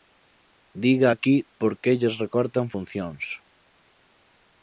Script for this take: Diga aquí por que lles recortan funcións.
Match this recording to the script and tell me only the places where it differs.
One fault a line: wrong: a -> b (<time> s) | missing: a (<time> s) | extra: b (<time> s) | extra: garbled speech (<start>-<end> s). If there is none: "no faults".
no faults